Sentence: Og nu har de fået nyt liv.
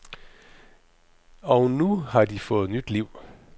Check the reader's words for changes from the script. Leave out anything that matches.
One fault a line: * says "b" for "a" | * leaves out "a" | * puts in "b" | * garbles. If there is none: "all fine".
all fine